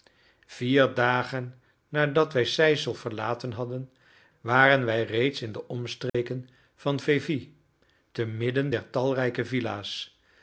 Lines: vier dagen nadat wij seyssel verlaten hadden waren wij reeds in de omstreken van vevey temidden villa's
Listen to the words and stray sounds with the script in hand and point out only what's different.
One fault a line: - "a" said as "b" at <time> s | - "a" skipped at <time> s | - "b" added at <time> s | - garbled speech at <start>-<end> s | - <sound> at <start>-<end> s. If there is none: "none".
- dropout at 6.1-6.1 s
- "der talrijke" added at 8.7 s